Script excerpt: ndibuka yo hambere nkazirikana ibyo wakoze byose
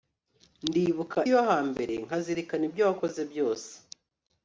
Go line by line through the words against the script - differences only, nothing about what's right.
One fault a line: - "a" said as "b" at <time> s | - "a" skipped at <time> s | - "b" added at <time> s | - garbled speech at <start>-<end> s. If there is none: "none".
none